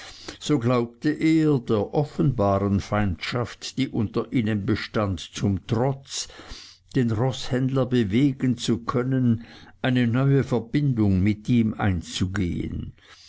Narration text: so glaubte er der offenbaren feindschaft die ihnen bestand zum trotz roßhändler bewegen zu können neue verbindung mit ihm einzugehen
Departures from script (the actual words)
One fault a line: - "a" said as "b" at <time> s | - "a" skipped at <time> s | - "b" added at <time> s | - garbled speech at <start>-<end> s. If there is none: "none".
- "unter" added at 3.9 s
- "den" added at 6.9 s
- "eine" added at 9.8 s